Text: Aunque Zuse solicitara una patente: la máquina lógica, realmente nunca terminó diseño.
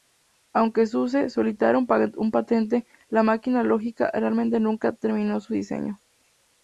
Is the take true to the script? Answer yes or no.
no